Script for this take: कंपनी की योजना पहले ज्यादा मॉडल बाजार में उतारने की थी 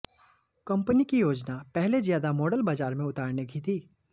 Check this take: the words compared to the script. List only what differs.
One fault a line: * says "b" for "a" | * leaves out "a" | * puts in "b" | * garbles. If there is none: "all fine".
all fine